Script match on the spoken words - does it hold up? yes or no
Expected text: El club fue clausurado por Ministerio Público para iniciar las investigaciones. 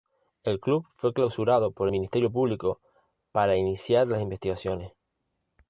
yes